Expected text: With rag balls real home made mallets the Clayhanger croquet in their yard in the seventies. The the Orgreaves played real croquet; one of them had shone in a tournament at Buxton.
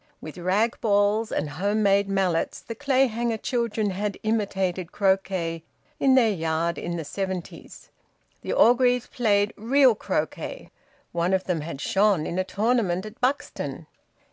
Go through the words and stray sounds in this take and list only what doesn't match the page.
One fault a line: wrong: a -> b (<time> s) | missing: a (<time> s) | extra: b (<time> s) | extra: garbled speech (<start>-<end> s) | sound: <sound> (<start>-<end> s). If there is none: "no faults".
wrong: real -> and (1.3 s)
extra: children had imitated (3.4 s)
missing: the (8.5 s)